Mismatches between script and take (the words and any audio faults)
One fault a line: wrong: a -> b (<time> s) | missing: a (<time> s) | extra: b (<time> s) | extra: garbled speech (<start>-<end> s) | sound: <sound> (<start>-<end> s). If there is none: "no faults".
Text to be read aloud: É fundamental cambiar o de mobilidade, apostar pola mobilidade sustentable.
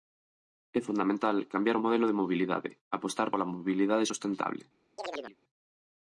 extra: modelo (1.9 s)
sound: chirp (5.0-5.4 s)